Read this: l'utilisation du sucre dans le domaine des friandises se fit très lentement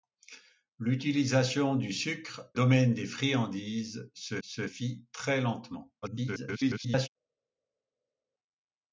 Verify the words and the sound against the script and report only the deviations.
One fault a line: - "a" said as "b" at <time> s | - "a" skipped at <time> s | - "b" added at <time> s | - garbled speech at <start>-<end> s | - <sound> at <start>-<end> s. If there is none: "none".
- "dans le" skipped at 2.5 s
- "se" added at 4.4 s
- garbled speech at 6.0-7.1 s